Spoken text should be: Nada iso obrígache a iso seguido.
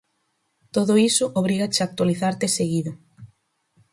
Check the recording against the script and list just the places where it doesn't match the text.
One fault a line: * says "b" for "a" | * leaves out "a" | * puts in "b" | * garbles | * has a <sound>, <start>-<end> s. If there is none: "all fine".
* says "Todo" for "Nada"
* says "actualizarte" for "iso"